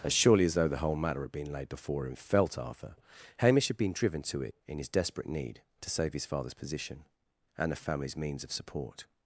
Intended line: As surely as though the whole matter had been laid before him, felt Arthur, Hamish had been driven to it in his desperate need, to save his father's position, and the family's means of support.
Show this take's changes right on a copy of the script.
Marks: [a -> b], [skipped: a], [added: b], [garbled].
As surely as though the whole matter had been laid before him, felt Arthur, Hamish had been driven to it in his desperate need, to save his father's position, and the family's means of support.